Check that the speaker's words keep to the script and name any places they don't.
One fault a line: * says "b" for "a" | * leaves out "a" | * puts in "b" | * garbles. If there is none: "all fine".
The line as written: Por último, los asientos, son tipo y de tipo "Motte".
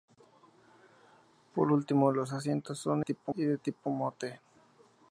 all fine